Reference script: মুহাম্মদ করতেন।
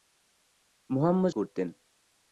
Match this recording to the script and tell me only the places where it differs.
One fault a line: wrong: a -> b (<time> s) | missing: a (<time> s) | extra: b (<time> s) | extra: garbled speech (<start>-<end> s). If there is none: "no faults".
no faults